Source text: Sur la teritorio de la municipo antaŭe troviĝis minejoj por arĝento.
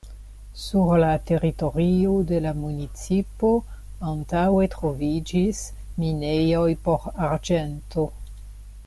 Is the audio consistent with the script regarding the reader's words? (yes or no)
yes